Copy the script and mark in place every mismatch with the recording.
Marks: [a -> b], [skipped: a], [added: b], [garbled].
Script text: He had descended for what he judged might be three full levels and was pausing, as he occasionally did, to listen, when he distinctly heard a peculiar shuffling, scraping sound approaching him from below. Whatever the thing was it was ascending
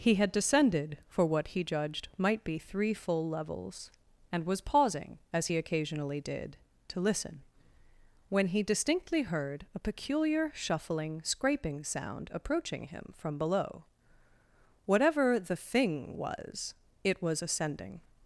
He had descended for what he judged might be three full levels and was pausing, as he occasionally did, to listen, when he distinctly heard a peculiar shuffling, scraping sound approaching him from below. Whatever the thing was it was ascending